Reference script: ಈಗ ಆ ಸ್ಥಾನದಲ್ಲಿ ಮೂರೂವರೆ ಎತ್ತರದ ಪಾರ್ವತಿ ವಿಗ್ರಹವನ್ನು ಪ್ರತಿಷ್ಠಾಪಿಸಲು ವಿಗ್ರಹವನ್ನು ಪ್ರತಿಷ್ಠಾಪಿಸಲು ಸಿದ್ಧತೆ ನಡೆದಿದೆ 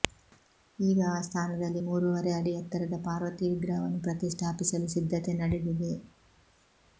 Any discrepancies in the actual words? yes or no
yes